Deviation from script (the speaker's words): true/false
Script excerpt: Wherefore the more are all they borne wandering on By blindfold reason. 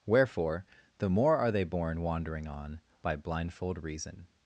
true